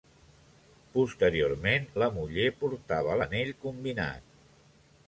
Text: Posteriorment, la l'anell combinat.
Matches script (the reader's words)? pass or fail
fail